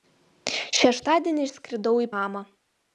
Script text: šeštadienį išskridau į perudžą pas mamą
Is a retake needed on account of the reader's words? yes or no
yes